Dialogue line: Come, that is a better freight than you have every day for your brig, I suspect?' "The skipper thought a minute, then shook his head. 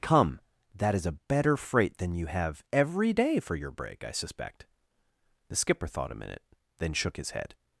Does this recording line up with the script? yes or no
no